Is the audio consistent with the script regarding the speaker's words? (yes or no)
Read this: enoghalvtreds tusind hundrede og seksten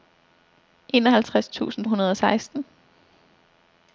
yes